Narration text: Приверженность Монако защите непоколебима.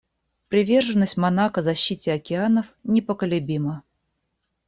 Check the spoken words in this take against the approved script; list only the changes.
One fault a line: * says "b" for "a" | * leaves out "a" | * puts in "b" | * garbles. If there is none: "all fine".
* puts in "океанов"